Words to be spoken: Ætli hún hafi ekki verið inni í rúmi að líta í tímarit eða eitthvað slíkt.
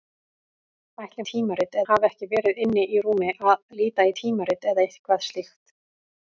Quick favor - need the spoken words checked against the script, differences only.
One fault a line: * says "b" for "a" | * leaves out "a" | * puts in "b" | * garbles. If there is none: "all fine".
* says "tímarit" for "hún"